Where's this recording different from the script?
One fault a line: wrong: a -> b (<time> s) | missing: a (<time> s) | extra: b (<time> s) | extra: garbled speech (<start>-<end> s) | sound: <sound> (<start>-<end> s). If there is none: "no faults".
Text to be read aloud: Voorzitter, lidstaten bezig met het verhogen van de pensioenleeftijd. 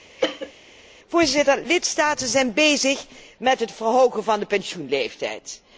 sound: cough (0.2-0.5 s)
extra: zijn (2.3 s)